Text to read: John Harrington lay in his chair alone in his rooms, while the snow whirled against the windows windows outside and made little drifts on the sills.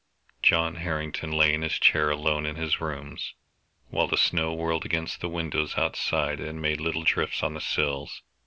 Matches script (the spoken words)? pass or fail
fail